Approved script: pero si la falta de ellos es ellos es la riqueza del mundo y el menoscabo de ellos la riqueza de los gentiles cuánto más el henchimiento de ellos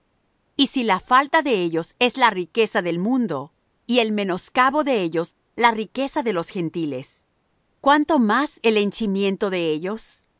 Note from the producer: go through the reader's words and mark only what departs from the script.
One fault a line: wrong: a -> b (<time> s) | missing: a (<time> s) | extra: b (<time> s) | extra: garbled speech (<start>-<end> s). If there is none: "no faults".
wrong: pero -> y (0.6 s)
missing: ellos es (2.2 s)